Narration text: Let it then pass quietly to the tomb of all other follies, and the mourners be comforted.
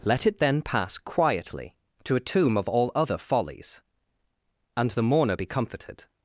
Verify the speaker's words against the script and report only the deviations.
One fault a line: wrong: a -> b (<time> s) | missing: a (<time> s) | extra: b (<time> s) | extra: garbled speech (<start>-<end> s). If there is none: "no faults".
wrong: the -> a (2.2 s)
wrong: mourners -> mourner (5.0 s)